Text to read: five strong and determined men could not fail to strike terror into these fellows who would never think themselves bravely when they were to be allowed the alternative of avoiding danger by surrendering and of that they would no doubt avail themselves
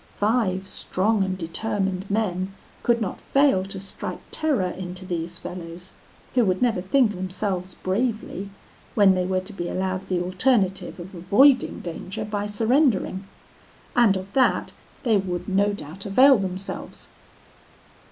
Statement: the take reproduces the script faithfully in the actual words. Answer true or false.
true